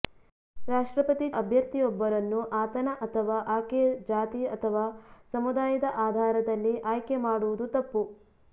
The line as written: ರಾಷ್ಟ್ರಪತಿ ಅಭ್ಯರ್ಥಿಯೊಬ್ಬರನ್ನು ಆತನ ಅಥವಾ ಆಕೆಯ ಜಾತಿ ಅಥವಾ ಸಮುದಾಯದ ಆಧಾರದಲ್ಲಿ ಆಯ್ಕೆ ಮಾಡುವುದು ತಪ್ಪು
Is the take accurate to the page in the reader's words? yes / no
yes